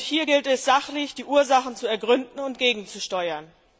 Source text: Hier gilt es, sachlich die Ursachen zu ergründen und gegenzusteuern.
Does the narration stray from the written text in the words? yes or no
no